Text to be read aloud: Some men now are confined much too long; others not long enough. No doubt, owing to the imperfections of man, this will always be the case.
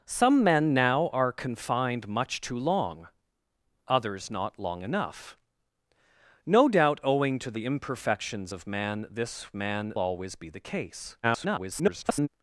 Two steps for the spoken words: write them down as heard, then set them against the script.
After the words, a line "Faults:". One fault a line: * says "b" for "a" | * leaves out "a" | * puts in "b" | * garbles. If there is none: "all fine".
Some men now are confined much too long; others not long enough. No doubt, owing to the imperfections of man, this man always be the case. [garbled]
Faults:
* says "man" for "will"
* garbles